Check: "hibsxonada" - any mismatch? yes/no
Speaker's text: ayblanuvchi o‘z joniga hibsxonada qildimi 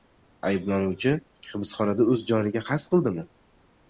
yes